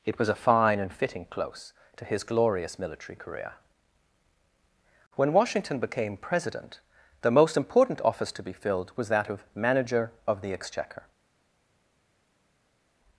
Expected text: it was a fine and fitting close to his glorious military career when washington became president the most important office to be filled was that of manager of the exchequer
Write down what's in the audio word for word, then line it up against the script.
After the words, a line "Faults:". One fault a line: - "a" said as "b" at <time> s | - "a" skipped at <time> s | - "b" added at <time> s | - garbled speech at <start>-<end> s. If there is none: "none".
it was a fine and fitting close to his glorious military career when washington became president the most important office to be filled was that of manager of the exchequer
Faults:
none